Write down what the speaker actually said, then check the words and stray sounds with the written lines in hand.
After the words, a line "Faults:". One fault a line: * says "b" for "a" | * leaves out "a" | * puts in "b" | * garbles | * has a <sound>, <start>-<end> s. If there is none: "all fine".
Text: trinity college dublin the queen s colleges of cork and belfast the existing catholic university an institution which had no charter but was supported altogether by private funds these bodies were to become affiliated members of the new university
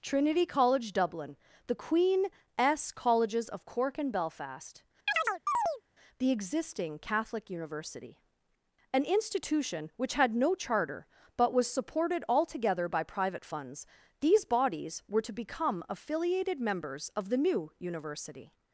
trinity college dublin the queen s colleges of cork and belfast the existing catholic university an institution which had no charter but was supported altogether by private funds these bodies were to become affiliated members of the new university
Faults:
* has a chirp, 5.1-5.8 s